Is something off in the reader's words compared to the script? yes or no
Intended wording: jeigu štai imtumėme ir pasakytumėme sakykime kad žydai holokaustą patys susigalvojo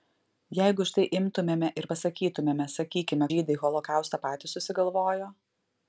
yes